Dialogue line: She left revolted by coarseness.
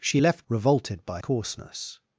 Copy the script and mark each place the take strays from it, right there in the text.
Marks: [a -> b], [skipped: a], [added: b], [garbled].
She left revolted by coarseness.